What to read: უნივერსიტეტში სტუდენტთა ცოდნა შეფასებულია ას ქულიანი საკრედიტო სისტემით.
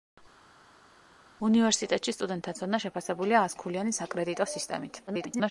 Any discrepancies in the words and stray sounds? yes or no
yes